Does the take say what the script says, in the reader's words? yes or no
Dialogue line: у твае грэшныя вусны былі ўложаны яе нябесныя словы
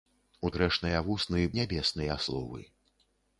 no